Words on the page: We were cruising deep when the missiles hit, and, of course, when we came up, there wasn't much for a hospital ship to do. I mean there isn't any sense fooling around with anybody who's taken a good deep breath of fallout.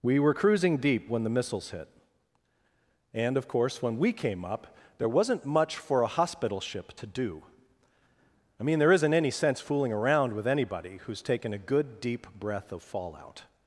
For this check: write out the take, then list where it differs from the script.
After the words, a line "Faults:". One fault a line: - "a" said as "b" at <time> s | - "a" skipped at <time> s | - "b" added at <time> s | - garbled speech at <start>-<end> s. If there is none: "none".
We were cruising deep when the missiles hit, and, of course, when we came up, there wasn't much for a hospital ship to do. I mean there isn't any sense fooling around with anybody who's taken a good deep breath of fallout.
Faults:
none